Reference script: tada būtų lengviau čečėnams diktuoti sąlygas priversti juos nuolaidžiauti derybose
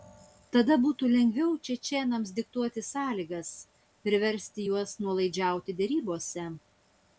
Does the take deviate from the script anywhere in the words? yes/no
no